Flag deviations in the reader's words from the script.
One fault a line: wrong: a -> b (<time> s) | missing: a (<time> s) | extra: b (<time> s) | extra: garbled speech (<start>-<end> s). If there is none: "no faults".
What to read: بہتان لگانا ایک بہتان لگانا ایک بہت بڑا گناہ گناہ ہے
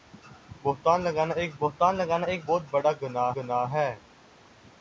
no faults